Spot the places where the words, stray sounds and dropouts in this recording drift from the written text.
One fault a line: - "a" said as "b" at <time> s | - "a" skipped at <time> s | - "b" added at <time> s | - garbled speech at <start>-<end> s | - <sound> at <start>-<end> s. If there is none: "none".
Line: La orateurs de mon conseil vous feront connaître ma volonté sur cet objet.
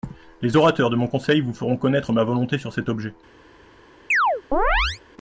- "La" said as "Les" at 0.4 s
- chirp at 4.1-5.0 s